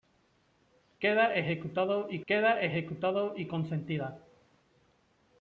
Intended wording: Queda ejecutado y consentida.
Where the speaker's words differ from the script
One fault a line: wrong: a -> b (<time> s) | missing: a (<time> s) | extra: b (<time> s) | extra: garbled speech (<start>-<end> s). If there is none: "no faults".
extra: queda ejecutado y (2.3 s)